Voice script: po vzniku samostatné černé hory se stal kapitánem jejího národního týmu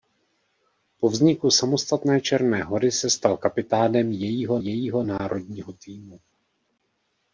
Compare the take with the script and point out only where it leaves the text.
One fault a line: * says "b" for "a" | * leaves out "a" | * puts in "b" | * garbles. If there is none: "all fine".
* puts in "jejího"